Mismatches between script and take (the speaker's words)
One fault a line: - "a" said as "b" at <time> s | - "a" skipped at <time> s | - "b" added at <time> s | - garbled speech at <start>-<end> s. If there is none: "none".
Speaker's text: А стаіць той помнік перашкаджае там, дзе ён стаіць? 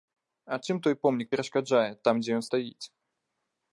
- "стаіць" said as "чым" at 0.7 s